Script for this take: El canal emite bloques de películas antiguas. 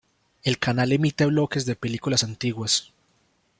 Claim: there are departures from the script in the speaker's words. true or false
false